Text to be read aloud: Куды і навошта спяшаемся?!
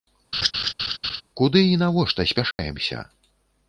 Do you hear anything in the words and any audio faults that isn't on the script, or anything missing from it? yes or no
yes